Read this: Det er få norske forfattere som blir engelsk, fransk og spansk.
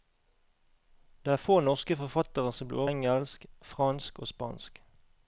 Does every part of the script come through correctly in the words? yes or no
yes